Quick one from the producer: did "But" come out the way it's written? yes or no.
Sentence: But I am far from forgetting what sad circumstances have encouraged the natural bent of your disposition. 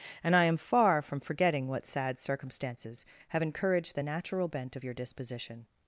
no